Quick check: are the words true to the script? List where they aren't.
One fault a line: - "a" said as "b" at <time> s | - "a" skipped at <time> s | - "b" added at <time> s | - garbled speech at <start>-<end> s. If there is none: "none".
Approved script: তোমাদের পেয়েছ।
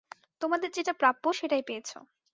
- "যেটা প্রাপ্য সেটাই" added at 0.7 s